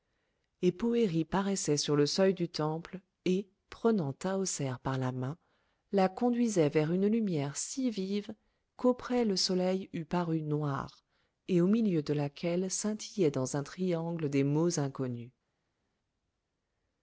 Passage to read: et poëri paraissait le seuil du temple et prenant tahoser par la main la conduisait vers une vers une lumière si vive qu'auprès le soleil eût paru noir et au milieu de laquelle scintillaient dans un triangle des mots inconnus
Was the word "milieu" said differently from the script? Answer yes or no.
no